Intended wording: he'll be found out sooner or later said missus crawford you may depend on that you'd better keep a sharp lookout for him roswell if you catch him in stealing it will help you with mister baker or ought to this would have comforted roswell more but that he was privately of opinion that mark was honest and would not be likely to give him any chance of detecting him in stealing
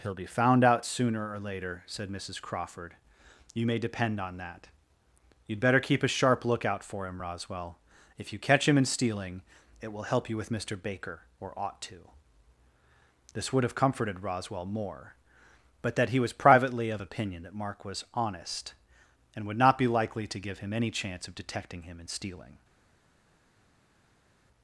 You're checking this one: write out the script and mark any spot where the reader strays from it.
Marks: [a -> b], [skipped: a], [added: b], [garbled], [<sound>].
he'll be found out sooner or later said missus crawford you may depend on that you'd better keep a sharp lookout for him roswell if you catch him in stealing it will help you with mister baker or ought to this would have comforted roswell more but that he was privately of opinion that mark was honest and would not be likely to give him any chance of detecting him in stealing